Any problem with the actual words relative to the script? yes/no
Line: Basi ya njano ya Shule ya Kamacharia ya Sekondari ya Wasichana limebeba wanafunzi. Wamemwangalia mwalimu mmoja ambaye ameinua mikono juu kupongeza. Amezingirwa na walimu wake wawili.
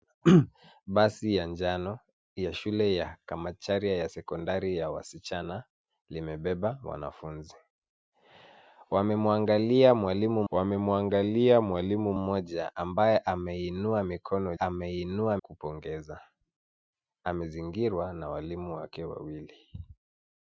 yes